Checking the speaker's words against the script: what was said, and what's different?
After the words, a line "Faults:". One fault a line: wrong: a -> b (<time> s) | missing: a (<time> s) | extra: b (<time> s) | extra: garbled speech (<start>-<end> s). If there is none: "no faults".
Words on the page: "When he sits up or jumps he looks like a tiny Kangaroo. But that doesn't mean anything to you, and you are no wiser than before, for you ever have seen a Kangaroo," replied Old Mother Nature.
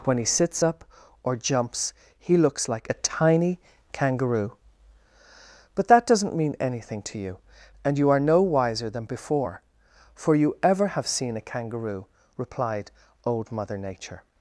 "When he sits up or jumps he looks like a tiny Kangaroo. But that doesn't mean anything to you, and you are no wiser than before, for you ever have seen a Kangaroo," replied Old Mother Nature.
Faults:
no faults